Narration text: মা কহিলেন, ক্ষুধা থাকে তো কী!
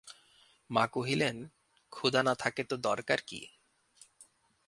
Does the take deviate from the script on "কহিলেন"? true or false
false